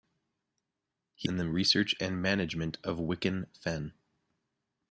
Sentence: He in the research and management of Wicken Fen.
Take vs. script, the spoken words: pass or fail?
pass